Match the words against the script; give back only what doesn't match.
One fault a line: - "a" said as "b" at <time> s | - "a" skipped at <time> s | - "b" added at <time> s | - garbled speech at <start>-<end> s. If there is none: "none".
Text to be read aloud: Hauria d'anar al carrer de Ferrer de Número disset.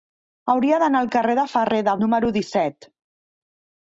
none